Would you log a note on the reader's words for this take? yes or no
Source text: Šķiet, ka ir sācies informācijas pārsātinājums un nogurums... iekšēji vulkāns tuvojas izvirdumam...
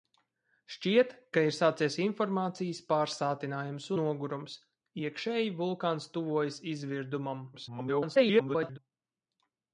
yes